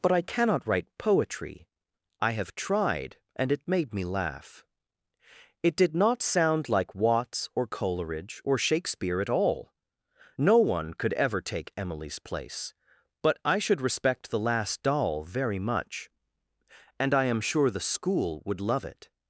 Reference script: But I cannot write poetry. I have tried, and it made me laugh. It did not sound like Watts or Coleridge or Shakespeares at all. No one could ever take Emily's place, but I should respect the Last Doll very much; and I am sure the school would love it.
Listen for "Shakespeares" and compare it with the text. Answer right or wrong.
wrong